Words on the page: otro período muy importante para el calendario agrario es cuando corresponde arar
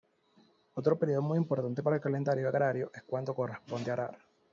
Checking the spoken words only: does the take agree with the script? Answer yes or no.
yes